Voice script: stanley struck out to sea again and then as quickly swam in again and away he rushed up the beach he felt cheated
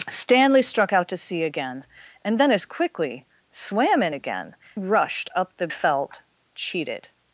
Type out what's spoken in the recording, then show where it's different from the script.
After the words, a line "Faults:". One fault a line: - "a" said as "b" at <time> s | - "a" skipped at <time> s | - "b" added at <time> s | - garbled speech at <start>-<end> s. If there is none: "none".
stanley struck out to sea again and then as quickly swam in again rushed up the felt cheated
Faults:
- "and away he" skipped at 4.5 s
- "beach he" skipped at 5.7 s